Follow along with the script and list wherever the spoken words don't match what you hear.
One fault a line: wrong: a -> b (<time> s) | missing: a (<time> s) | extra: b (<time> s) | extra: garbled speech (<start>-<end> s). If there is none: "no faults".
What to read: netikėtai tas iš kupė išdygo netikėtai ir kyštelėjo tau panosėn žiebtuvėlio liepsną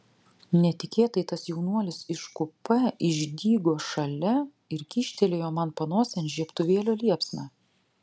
extra: jaunuolis (1.5 s)
wrong: netikėtai -> šalia (3.9 s)
wrong: tau -> man (5.6 s)